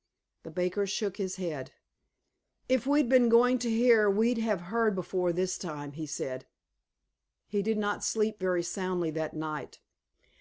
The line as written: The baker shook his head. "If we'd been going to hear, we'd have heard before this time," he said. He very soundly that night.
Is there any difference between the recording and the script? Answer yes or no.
yes